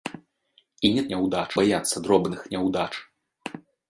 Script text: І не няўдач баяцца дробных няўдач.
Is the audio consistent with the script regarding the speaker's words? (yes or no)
yes